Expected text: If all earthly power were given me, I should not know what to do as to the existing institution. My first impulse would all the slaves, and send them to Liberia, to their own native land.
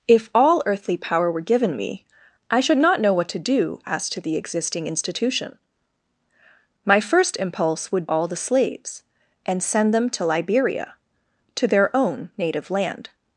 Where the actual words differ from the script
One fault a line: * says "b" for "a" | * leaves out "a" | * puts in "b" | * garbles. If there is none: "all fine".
all fine